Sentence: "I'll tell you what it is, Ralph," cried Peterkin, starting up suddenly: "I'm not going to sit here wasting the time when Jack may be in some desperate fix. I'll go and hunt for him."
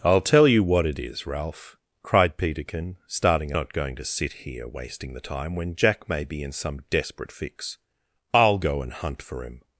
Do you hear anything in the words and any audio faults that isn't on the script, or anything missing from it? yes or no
yes